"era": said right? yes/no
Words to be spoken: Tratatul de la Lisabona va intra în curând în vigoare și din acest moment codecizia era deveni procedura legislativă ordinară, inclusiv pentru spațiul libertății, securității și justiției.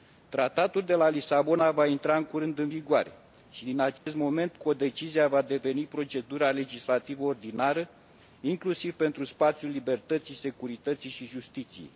no